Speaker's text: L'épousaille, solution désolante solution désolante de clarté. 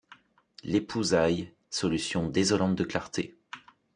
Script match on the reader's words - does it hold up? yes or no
no